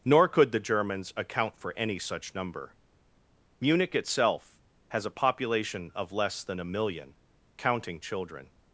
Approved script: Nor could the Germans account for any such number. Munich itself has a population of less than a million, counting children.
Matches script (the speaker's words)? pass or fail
pass